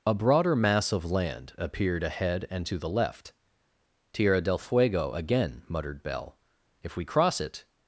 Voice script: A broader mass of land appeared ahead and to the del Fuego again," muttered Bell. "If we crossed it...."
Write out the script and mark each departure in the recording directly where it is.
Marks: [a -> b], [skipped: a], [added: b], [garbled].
A broader mass of land appeared ahead and to the [added: left Tierra] del Fuego again," muttered Bell. "If we [crossed -> cross] it...."